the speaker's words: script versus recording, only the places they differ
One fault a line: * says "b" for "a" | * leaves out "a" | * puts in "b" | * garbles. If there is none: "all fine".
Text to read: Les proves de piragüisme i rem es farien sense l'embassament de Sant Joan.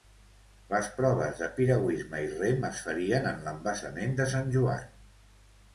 * says "en" for "sense"